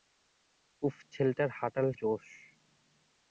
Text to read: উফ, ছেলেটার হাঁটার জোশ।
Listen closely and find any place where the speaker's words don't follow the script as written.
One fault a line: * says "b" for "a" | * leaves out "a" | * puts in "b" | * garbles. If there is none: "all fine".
all fine